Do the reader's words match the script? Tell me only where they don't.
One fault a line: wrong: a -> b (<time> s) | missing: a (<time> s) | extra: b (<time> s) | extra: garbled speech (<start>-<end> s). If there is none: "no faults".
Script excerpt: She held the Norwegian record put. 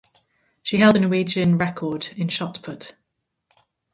extra: in shot (2.2 s)